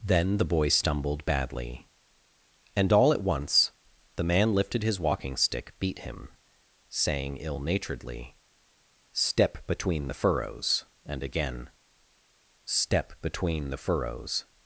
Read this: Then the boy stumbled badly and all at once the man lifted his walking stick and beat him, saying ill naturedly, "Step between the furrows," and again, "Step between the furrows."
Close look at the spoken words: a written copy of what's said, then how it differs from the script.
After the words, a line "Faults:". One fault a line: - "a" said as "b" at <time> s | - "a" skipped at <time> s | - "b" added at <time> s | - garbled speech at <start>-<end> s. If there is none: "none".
Then the boy stumbled badly and all at once the man lifted his walking stick beat him, saying ill naturedly, "Step between the furrows," and again, "Step between the furrows."
Faults:
- "and" skipped at 5.7 s